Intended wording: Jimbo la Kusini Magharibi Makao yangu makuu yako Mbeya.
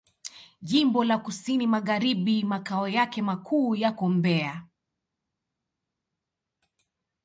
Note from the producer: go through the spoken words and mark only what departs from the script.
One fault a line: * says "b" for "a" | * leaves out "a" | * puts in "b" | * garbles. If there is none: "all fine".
* says "yake" for "yangu"